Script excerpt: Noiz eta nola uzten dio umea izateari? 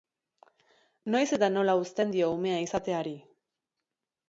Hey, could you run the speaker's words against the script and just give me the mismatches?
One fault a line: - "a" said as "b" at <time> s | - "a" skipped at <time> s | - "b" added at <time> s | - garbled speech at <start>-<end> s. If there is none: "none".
none